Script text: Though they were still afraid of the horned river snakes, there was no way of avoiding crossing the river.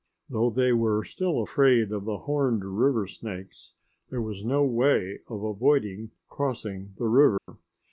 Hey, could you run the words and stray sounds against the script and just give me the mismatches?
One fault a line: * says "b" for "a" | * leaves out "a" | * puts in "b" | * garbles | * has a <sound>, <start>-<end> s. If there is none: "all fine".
* has a dropout, 7.4-7.5 s